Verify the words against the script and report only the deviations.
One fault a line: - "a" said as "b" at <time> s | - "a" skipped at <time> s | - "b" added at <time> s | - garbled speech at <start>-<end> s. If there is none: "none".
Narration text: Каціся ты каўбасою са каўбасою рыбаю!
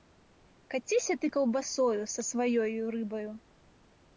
- "каўбасою" said as "сваёю" at 2.3 s